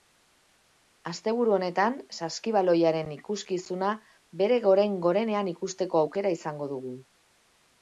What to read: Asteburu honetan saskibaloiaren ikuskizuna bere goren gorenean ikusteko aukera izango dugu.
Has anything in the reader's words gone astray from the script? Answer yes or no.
no